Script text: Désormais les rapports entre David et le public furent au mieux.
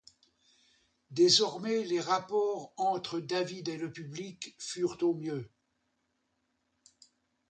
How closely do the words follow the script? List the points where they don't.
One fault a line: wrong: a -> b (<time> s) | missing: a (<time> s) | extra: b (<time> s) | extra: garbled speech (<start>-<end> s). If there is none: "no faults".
no faults